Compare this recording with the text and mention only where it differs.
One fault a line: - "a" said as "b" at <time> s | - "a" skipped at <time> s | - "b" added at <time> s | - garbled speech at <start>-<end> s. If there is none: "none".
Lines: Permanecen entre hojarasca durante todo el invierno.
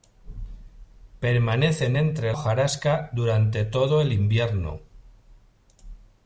none